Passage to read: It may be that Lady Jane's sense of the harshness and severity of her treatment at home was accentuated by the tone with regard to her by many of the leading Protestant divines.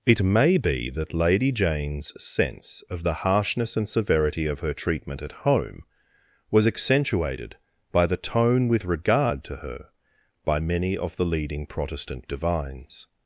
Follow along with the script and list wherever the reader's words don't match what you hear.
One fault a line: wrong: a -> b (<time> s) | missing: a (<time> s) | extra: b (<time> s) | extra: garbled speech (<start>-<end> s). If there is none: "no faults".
no faults